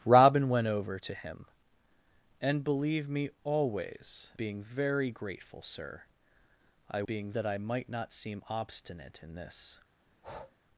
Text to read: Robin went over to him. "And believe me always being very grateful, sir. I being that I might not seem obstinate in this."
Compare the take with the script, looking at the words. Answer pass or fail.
pass